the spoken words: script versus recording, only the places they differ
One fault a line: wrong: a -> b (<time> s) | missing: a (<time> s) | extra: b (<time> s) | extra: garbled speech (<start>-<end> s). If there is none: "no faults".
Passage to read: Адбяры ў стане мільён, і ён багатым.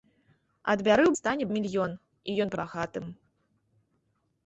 no faults